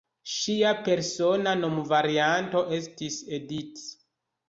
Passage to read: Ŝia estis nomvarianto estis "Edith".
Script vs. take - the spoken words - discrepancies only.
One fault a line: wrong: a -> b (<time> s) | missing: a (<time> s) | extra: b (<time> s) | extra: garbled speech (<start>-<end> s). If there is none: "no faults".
wrong: estis -> persona (0.9 s)